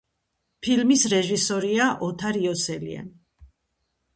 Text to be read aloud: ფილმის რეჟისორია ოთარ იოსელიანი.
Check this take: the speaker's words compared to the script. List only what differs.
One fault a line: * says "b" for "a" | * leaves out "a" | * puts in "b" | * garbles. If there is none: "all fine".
all fine